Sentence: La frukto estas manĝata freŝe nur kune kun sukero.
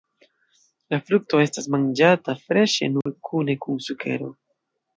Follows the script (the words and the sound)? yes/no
no